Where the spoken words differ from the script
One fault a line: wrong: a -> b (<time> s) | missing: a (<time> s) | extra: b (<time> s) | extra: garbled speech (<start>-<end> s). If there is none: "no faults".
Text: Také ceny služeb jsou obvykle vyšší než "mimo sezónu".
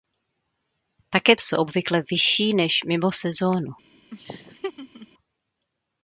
missing: ceny služeb (1.4 s)